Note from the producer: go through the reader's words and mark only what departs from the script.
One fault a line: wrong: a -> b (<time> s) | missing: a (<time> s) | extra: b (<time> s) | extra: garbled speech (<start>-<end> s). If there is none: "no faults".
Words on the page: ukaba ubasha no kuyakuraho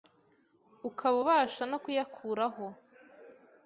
no faults